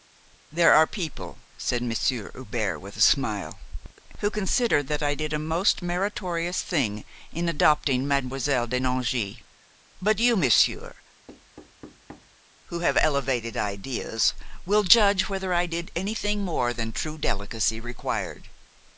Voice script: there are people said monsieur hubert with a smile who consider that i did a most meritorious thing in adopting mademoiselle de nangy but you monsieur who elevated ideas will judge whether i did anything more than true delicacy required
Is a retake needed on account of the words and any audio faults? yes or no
yes